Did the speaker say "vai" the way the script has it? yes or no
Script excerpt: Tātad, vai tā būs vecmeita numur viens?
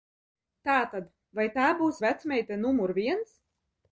yes